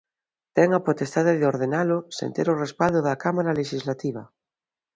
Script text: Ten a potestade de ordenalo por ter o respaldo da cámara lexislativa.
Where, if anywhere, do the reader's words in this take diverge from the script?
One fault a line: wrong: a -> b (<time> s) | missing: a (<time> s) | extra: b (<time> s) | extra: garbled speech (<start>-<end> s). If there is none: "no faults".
wrong: por -> sen (2.2 s)